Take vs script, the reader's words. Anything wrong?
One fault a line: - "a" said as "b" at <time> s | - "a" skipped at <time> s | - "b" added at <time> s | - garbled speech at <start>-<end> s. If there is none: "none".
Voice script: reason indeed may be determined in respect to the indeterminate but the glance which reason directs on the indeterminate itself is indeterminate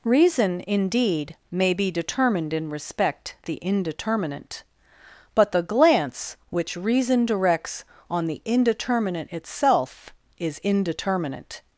- "to" skipped at 3.3 s